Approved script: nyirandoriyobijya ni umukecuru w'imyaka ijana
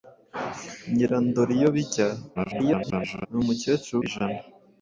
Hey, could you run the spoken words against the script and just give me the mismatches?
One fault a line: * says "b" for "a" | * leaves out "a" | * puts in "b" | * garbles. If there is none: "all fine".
* garbles
* leaves out "w'imyaka"